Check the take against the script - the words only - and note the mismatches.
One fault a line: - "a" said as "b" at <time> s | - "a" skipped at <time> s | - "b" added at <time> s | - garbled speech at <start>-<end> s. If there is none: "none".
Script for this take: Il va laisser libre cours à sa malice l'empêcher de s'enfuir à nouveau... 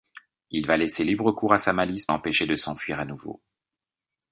none